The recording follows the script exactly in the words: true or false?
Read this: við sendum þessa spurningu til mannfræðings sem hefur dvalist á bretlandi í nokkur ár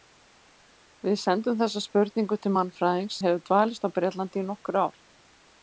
false